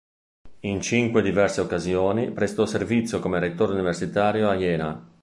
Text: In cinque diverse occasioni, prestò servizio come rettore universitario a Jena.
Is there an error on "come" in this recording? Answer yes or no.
no